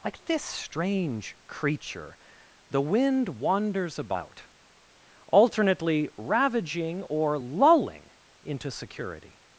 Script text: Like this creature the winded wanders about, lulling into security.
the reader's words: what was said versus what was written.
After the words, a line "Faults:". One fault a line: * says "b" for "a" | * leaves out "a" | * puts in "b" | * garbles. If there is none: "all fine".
Like this strange creature the wind wanders about, alternately ravaging or lulling into security.
Faults:
* puts in "strange"
* says "wind" for "winded"
* puts in "alternately ravaging or"